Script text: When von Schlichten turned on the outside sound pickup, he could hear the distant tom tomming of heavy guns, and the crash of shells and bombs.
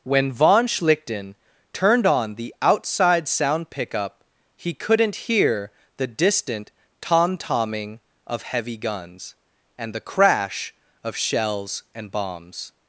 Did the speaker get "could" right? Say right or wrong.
wrong